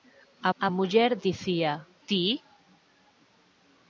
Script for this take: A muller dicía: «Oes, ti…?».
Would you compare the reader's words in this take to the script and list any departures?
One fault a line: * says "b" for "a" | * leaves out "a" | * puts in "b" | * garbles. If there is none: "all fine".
* puts in "a"
* leaves out "Oes"